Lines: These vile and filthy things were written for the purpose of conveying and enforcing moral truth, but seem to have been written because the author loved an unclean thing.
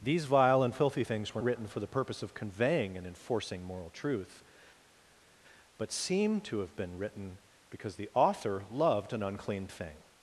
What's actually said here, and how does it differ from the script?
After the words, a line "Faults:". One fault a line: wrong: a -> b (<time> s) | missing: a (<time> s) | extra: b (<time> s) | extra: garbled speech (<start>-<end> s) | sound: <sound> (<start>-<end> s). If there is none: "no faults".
These vile and filthy things were written for the purpose of conveying and enforcing moral truth, but seem to have been written because the author loved an unclean thing.
Faults:
no faults